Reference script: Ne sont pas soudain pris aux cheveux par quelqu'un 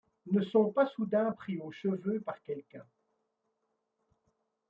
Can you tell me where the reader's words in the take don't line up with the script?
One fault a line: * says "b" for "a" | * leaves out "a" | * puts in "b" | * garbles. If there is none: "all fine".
all fine